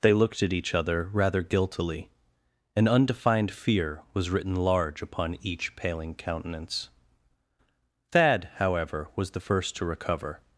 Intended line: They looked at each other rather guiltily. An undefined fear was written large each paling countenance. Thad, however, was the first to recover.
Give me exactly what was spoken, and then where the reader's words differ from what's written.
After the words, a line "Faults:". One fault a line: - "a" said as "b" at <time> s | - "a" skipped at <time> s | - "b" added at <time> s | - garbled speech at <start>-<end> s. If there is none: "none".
They looked at each other rather guiltily. An undefined fear was written large upon each paling countenance. Thad, however, was the first to recover.
Faults:
- "upon" added at 5.0 s